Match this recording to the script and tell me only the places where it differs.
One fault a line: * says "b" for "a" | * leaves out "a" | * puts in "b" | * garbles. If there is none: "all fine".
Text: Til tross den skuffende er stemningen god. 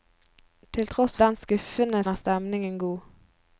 all fine